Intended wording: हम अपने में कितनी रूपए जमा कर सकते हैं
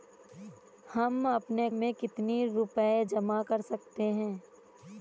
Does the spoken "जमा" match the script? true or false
true